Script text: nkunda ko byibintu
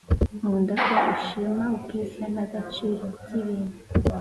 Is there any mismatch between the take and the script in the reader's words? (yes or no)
yes